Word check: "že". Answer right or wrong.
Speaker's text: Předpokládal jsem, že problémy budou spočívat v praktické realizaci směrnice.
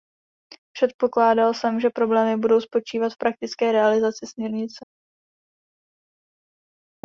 right